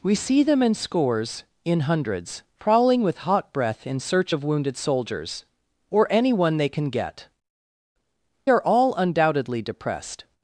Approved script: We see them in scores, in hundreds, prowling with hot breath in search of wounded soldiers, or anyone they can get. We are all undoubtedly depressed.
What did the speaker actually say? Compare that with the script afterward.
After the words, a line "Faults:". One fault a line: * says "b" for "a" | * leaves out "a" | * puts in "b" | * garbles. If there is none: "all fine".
We see them in scores, in hundreds, prowling with hot breath in search of wounded soldiers, or anyone they can get. Are all undoubtedly depressed.
Faults:
* leaves out "We"